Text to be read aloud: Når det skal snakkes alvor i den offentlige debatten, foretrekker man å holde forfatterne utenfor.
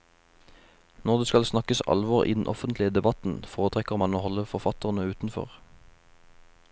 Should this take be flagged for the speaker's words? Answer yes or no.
no